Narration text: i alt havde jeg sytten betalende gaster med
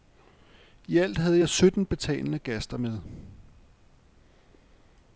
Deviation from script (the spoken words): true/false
false